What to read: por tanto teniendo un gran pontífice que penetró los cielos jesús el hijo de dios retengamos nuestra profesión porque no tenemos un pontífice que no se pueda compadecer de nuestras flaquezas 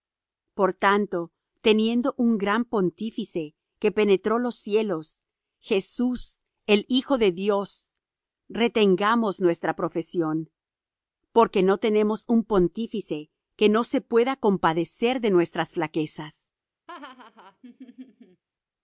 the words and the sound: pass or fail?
fail